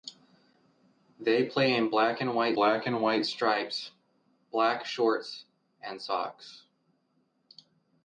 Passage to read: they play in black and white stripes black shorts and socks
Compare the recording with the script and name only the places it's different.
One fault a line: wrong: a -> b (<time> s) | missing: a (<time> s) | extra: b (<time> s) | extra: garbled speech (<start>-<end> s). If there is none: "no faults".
extra: black and white (2.6 s)